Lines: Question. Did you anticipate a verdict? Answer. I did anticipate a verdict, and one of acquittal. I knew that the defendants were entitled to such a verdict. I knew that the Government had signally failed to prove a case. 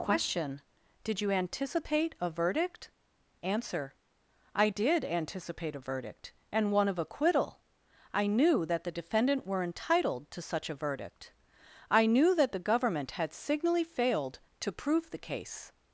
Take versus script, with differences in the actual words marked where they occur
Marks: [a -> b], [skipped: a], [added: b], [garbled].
Question. Did you anticipate a verdict? Answer. I did anticipate a verdict, and one of acquittal. I knew that the [defendants -> defendant] were entitled to such a verdict. I knew that the Government had signally failed to prove [a -> the] case.